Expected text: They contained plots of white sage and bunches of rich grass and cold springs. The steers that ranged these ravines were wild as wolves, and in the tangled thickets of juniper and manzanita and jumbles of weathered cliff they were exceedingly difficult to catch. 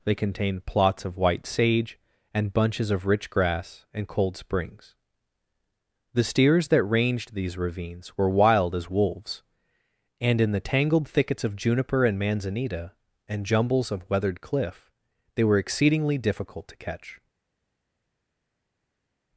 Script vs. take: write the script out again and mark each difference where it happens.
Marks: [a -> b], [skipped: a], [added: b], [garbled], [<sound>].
They contained plots of white sage and bunches of rich grass and cold springs. The steers that ranged these ravines were wild as wolves, and in the tangled thickets of juniper and manzanita and jumbles of weathered cliff they were exceedingly difficult to catch.